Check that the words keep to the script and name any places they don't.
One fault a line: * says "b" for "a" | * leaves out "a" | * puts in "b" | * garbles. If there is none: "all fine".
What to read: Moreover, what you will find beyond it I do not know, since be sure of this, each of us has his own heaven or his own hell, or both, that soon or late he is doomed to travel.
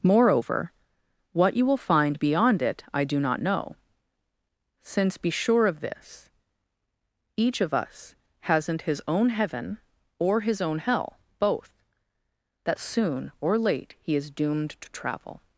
* says "hasn't" for "has"
* leaves out "or"